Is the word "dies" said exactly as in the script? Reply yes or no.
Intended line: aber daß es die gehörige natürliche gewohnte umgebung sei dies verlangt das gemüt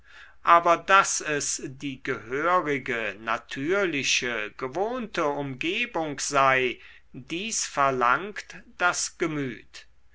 yes